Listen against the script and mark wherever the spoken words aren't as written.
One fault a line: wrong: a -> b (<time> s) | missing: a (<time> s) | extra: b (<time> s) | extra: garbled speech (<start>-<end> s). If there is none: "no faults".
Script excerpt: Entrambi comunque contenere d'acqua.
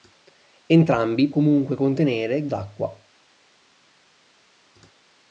no faults